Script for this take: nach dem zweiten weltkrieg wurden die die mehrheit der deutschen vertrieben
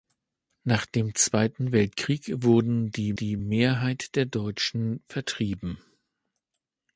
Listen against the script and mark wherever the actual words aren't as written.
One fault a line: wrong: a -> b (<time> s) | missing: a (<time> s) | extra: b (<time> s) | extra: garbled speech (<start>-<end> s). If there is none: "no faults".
no faults